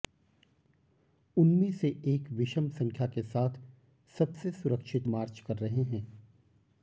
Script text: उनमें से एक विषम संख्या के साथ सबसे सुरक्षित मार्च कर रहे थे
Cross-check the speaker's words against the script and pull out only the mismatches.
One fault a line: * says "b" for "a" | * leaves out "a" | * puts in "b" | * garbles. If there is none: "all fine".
* says "हैं" for "थे"